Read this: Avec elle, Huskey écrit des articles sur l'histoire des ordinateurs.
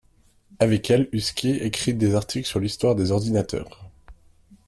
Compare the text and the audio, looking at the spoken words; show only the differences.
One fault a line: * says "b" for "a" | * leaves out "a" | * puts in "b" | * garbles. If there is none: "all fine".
all fine